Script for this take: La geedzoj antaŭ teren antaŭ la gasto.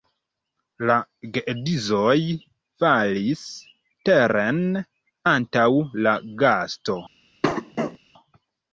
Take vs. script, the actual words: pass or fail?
fail